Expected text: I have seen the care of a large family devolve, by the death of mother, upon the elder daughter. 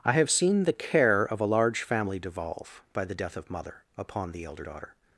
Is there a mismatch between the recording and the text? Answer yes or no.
no